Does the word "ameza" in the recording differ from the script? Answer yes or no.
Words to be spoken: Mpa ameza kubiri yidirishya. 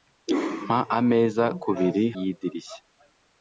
no